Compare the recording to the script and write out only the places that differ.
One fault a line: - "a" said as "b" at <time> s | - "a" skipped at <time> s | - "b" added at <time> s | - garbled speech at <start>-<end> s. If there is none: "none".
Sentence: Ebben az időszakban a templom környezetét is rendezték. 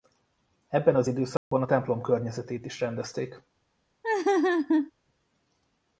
none